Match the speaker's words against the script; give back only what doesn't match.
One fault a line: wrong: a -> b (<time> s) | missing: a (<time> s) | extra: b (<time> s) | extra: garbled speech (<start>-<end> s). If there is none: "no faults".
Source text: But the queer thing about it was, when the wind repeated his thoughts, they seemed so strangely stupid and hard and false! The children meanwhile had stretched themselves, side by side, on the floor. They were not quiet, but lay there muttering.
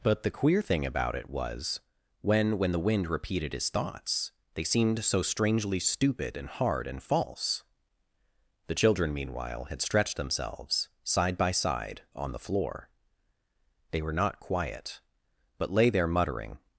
extra: when (2.6 s)